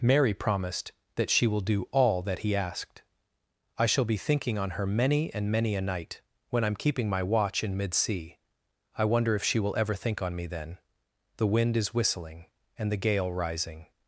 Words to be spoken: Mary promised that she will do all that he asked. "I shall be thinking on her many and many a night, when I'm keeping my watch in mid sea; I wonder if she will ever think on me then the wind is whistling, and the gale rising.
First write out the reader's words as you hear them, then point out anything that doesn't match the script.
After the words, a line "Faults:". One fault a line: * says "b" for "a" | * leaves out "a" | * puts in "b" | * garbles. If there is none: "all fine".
Mary promised that she will do all that he asked. "I shall be thinking on her many and many a night, when I'm keeping my watch in mid sea; I wonder if she will ever think on me then the wind is whistling, and the gale rising.
Faults:
all fine